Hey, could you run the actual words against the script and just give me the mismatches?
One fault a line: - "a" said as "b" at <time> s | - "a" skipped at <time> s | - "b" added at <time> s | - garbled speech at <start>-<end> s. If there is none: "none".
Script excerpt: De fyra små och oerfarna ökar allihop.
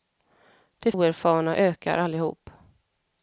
- "fyra små och" skipped at 0.9 s